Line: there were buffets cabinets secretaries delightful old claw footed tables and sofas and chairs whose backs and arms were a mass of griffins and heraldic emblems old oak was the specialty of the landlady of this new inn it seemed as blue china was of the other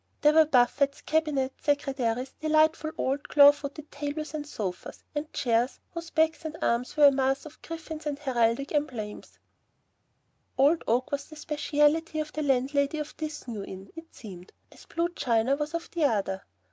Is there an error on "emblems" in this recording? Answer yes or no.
no